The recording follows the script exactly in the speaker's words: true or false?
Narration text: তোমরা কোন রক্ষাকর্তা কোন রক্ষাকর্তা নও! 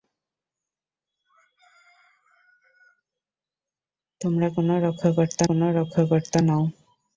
true